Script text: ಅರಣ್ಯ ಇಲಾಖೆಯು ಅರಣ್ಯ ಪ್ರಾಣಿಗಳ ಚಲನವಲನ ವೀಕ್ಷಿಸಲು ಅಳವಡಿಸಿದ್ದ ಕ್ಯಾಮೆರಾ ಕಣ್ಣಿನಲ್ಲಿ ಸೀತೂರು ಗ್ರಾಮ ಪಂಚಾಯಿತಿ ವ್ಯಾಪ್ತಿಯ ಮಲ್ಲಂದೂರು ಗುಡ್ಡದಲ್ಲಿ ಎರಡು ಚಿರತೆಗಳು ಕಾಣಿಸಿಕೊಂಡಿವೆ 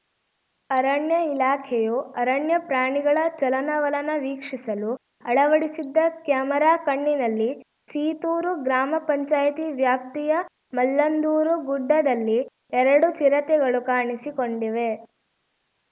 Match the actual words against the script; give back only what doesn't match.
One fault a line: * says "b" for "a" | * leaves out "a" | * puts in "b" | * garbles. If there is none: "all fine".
all fine